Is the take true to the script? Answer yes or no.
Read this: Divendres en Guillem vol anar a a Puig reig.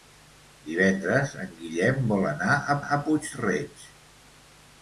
yes